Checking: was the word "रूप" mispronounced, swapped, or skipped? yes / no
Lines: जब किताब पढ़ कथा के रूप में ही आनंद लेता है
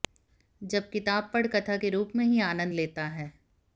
no